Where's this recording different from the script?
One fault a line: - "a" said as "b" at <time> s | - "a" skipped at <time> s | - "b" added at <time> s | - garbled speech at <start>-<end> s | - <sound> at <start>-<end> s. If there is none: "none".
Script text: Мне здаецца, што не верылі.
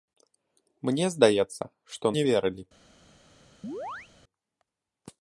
- chirp at 3.6-4.1 s